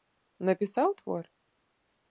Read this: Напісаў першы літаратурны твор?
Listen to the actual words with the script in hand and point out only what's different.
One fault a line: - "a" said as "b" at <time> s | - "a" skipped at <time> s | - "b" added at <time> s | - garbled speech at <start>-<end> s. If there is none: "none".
- "першы літаратурны" skipped at 0.9 s